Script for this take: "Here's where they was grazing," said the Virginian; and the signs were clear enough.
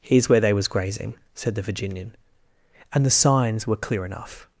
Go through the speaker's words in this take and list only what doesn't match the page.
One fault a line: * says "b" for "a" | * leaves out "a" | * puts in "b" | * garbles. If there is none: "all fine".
all fine